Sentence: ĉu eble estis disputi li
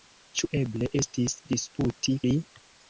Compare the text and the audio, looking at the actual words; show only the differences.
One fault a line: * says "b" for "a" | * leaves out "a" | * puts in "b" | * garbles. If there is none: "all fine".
all fine